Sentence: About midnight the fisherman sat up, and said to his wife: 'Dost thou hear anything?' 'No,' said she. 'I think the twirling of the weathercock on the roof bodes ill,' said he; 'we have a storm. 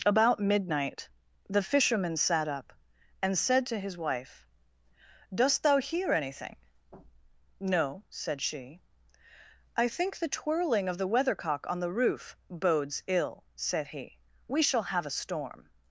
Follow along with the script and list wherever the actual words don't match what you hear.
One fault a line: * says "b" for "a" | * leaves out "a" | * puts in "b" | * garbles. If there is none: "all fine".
* puts in "shall"